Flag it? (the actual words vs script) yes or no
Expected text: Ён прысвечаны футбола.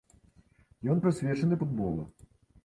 no